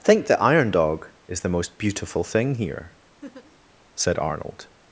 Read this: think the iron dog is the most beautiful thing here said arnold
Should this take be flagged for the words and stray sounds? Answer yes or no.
yes